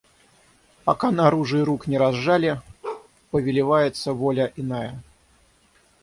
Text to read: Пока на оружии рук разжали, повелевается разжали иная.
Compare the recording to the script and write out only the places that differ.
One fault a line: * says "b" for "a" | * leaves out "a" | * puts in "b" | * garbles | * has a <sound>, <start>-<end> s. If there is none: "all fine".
* puts in "не"
* has a bark, 2.8-3.1 s
* says "воля" for "разжали"